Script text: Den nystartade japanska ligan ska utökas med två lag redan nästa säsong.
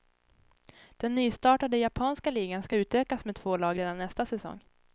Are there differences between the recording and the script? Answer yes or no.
no